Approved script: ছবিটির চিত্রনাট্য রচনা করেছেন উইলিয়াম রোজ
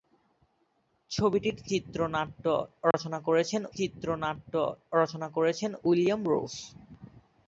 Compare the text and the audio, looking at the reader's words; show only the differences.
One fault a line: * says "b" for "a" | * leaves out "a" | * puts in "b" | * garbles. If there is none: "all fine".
* puts in "চিত্রনাট্য রচনা করেছেন"